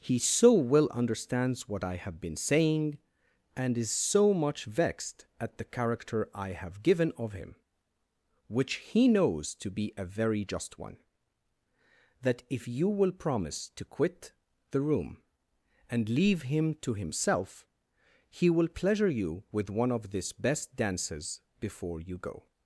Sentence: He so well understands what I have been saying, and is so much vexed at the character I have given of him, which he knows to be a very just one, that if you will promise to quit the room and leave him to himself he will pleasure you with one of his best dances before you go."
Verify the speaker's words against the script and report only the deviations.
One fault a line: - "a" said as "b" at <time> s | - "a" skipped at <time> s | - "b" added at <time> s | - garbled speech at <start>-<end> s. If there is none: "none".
- "his" said as "this" at 20.1 s